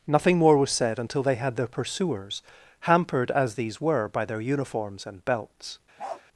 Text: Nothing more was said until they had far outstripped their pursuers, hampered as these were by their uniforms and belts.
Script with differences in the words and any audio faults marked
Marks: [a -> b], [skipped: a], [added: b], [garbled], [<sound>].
Nothing more was said until they had [skipped: far outstripped] their pursuers, hampered as these were by their uniforms and belts. [bark]